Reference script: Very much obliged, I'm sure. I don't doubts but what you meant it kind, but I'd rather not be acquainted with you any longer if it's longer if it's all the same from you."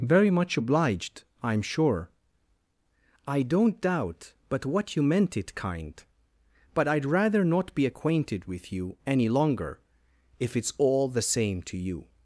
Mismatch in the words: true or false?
true